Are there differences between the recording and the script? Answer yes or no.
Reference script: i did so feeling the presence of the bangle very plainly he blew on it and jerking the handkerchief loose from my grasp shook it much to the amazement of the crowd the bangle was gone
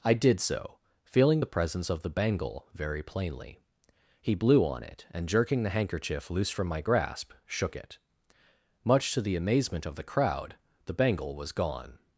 no